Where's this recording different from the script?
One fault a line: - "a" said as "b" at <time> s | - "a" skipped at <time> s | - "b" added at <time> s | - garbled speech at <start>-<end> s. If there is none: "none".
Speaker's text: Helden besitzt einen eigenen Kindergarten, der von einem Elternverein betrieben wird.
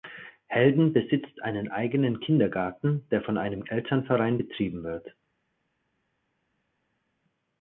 none